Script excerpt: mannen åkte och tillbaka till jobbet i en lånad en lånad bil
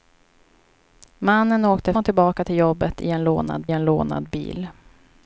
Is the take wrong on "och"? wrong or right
right